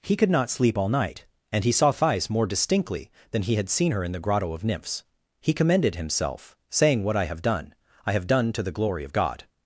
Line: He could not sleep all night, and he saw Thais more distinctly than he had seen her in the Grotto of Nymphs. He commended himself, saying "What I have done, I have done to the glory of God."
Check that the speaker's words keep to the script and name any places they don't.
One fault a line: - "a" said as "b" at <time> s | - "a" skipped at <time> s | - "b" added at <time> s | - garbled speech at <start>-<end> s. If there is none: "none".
none